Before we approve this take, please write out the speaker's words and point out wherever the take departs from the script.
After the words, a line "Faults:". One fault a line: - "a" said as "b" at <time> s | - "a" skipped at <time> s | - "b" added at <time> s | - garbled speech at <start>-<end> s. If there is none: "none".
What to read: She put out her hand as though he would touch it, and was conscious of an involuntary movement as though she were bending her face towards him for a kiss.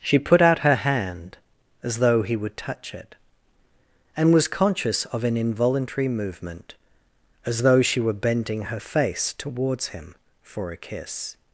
She put out her hand as though he would touch it, and was conscious of an involuntary movement as though she were bending her face towards him for a kiss.
Faults:
none